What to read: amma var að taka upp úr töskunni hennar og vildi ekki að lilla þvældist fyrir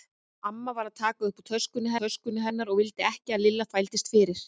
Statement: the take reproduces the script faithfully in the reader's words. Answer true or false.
false